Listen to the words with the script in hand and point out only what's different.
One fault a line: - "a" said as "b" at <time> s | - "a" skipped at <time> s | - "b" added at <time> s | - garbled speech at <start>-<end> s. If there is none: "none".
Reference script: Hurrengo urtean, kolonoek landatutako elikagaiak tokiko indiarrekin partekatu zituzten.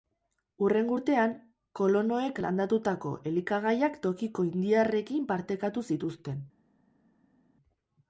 none